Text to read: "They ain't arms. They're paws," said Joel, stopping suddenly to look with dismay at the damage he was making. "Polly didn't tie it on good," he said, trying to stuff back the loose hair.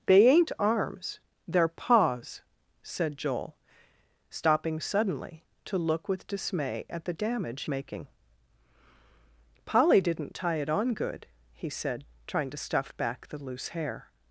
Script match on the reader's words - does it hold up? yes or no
no